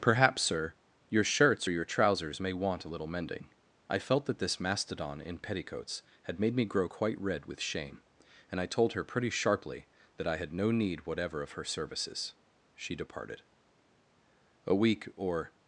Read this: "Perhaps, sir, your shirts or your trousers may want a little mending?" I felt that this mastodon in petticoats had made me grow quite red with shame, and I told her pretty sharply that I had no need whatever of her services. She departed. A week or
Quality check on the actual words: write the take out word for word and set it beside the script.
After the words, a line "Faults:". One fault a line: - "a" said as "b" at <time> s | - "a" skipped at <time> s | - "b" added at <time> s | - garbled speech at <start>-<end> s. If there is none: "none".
"Perhaps, sir, your shirts or your trousers may want a little mending?" I felt that this mastodon in petticoats had made me grow quite red with shame, and I told her pretty sharply that I had no need whatever of her services. She departed. A week or
Faults:
none